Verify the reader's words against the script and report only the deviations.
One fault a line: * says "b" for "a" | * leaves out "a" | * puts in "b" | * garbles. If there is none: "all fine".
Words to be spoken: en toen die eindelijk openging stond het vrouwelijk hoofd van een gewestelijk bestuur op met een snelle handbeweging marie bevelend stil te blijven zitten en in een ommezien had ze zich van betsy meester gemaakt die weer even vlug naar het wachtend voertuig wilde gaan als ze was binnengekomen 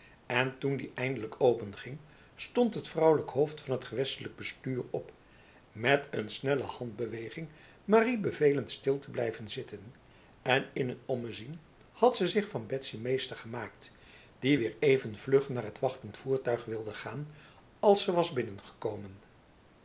* says "het" for "een"